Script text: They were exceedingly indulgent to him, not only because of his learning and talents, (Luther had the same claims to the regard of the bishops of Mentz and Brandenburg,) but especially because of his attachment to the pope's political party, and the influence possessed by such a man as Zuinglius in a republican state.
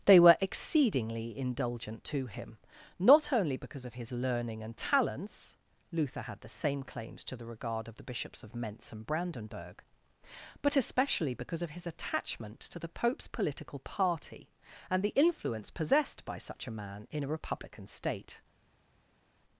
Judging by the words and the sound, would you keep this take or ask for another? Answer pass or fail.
fail